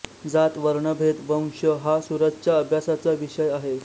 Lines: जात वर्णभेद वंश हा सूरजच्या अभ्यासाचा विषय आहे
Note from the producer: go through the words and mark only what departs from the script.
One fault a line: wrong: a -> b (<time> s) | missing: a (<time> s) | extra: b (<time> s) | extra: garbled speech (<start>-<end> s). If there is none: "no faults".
no faults